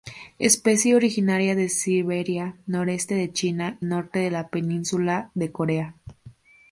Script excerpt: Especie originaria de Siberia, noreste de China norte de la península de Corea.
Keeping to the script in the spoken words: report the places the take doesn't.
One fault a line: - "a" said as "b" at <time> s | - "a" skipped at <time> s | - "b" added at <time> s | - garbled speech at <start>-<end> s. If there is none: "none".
none